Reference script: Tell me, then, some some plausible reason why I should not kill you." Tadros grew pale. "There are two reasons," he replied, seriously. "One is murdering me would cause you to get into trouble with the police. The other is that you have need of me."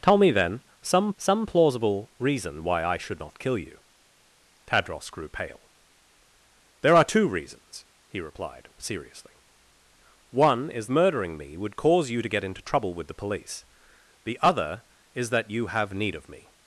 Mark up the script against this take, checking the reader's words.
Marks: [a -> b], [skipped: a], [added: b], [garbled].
Tell me, then, some some plausible reason why I should not kill you." Tadros grew pale. "There are two reasons," he replied, seriously. "One is murdering me would cause you to get into trouble with the police. The other is that you have need of me."